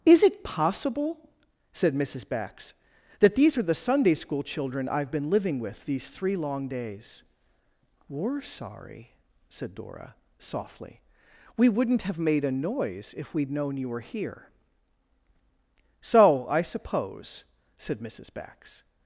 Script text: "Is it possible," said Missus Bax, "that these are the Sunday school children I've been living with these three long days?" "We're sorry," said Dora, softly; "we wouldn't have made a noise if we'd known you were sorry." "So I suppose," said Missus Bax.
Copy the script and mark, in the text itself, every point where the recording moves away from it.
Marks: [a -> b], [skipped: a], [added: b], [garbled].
"Is it possible," said Missus Bax, "that these are the Sunday school children I've been living with these three long days?" "We're sorry," said Dora, softly; "we wouldn't have made a noise if we'd known you were [sorry." -> here] "So I suppose," said Missus Bax.